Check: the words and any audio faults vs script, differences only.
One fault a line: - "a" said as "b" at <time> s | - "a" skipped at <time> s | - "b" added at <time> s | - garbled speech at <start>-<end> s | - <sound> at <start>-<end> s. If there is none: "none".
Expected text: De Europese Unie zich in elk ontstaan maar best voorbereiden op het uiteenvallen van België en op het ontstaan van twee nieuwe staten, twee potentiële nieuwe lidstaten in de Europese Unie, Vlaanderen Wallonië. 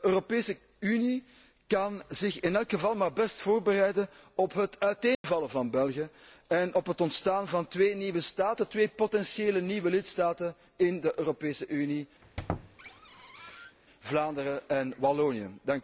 - "kan" added at 1.7 s
- "ontstaan" said as "geval" at 2.7 s
- dropout at 5.1-5.2 s
- squeak at 12.2-13.8 s
- "en" added at 14.7 s